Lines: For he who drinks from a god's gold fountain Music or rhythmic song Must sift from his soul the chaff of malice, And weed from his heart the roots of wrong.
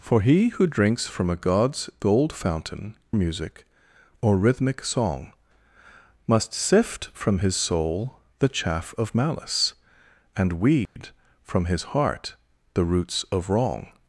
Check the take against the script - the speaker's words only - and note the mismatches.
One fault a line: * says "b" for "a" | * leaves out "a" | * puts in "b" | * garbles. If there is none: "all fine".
all fine